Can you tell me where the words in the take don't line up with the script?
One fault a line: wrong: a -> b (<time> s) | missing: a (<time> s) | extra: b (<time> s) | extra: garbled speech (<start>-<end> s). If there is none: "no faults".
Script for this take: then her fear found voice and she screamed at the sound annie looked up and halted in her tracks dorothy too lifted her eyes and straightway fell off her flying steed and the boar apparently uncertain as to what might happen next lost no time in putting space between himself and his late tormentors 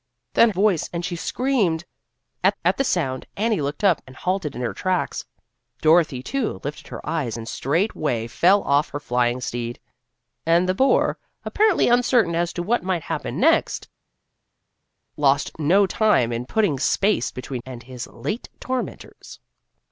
missing: her fear found (0.5 s)
extra: at (2.6 s)
missing: himself (17.6 s)